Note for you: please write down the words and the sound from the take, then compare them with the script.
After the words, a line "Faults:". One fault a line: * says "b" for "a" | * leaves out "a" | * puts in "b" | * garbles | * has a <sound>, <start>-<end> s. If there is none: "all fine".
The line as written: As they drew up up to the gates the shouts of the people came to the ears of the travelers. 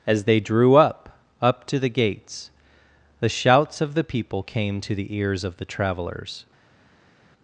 As they drew up up to the gates the shouts of the people came to the ears of the travelers.
Faults:
all fine